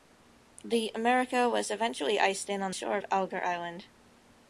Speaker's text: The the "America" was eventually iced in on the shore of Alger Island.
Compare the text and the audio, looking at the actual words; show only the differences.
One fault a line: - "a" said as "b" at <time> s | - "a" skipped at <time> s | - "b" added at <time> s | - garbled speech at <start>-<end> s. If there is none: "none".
- "the" skipped at 0.9 s